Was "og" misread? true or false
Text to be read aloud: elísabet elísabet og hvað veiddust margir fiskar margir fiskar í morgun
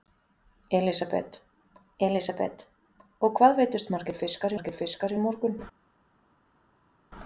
false